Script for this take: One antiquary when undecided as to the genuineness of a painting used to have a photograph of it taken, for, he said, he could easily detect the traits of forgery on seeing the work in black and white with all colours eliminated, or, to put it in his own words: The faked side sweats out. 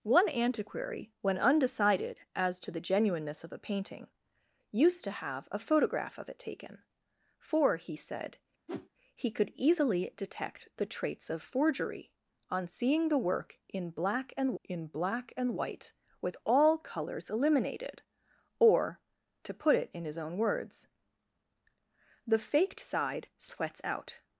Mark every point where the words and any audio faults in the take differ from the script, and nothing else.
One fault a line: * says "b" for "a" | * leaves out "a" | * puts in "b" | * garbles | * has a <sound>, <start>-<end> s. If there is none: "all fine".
* has a whoosh, 8.7-8.9 s
* puts in "in black and"